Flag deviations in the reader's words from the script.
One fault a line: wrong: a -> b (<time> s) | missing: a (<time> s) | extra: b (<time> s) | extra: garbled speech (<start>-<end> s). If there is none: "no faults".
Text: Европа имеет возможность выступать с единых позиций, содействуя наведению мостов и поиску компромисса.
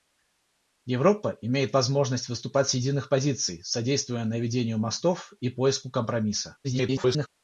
extra: garbled speech (6.6-7.3 s)